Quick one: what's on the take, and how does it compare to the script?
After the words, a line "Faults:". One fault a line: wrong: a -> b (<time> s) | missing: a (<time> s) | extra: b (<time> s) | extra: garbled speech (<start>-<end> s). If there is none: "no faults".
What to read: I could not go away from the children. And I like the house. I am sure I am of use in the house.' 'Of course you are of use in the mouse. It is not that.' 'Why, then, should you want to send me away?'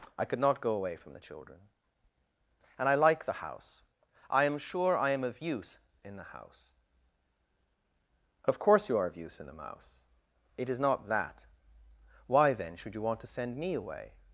I could not go away from the children. And I like the house. I am sure I am of use in the house.' 'Of course you are of use in the mouse. It is not that.' 'Why, then, should you want to send me away?'
Faults:
no faults